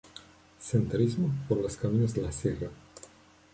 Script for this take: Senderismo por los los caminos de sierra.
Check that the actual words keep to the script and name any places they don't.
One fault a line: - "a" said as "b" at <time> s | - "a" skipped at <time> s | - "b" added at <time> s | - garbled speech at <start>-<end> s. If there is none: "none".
- "los" skipped at 1.8 s
- "la" added at 2.2 s